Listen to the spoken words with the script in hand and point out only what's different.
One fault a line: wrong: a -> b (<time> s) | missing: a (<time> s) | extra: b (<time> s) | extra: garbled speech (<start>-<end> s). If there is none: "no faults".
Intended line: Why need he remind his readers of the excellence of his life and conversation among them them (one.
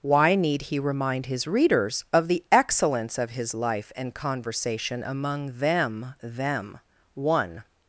no faults